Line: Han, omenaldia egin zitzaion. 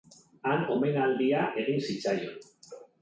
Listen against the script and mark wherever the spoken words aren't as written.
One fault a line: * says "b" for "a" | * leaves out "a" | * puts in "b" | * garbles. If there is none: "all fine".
all fine